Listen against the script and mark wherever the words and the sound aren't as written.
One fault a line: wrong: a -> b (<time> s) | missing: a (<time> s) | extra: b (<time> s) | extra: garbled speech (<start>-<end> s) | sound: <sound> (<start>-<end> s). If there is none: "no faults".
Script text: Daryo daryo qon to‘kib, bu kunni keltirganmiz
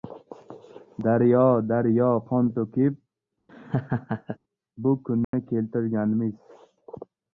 sound: laugh (3.5-4.4 s)
sound: dropout (5.2-5.3 s)